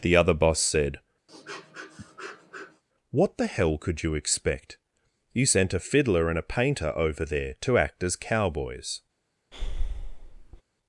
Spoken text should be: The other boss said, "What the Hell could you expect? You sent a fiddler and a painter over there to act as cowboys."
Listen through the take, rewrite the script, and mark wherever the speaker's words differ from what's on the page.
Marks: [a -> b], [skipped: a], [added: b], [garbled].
The other boss said, "What the Hell could you expect? You sent a fiddler and a painter over there to act as cowboys."